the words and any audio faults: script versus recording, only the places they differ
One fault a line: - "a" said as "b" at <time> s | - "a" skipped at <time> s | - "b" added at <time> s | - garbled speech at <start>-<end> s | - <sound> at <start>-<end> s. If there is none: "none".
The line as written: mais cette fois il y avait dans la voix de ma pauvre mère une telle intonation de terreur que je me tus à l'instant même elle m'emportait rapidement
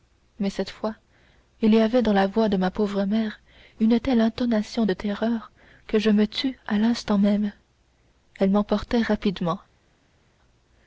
none